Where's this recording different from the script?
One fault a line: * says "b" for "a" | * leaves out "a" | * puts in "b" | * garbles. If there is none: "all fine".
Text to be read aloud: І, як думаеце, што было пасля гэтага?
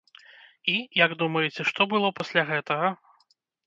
all fine